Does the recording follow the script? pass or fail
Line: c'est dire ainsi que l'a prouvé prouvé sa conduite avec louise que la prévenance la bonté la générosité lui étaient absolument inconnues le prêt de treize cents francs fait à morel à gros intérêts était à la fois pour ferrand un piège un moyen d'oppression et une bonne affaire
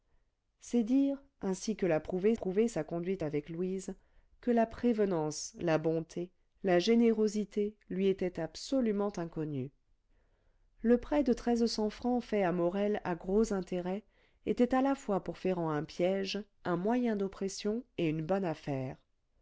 pass